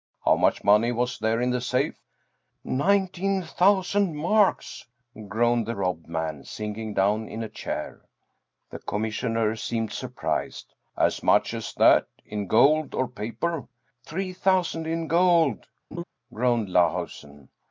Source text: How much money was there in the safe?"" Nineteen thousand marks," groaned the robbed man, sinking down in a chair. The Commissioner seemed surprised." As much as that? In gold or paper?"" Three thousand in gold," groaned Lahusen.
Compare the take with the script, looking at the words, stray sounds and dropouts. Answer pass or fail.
fail